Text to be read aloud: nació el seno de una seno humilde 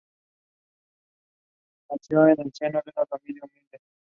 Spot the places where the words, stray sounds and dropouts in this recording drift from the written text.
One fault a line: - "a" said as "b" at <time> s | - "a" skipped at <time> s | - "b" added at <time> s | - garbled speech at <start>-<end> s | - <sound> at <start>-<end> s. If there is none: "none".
- "en" added at 2.3 s
- "seno" said as "familia" at 3.1 s